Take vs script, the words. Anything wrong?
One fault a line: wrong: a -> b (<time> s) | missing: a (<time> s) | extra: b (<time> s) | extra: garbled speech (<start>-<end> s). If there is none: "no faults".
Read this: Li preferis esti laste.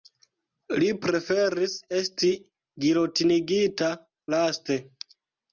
extra: gilotinigita (2.9 s)